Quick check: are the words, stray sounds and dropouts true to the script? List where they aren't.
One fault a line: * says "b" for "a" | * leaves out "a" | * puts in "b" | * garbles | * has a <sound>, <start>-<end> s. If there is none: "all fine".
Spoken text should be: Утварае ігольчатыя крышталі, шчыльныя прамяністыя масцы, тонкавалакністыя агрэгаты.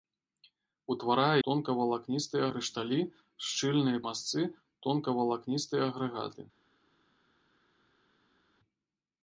* says "тонкавалакністыя" for "ігольчатыя"
* leaves out "прамяністыя"